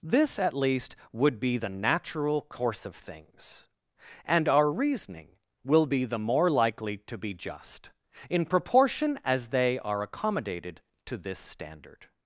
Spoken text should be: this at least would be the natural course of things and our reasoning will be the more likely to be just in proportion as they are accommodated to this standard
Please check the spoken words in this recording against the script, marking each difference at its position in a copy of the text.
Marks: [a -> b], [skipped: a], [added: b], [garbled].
this at least would be the natural course of things and our reasoning will be the more likely to be just in proportion as they are accommodated to this standard